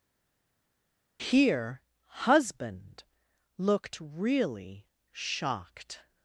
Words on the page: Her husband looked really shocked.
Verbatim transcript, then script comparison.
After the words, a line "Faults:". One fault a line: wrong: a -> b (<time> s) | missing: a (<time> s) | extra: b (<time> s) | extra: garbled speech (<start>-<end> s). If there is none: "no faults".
Here husband looked really shocked.
Faults:
wrong: Her -> Here (1.2 s)